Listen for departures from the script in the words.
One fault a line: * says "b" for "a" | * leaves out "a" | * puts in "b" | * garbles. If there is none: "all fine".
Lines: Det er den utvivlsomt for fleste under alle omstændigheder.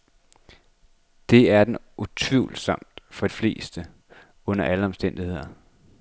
all fine